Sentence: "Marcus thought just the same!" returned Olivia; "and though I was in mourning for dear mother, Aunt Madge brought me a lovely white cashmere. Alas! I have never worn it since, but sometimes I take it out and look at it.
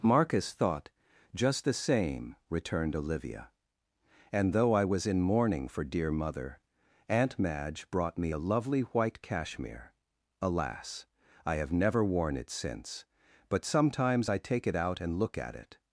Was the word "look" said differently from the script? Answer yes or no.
no